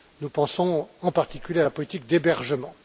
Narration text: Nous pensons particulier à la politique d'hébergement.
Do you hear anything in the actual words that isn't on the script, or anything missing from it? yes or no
yes